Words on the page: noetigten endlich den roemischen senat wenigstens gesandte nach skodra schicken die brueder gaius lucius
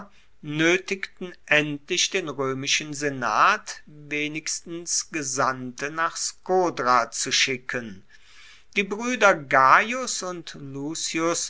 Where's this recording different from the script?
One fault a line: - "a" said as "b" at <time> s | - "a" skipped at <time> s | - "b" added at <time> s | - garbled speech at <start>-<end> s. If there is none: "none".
- "zu" added at 7.1 s
- "und" added at 10.2 s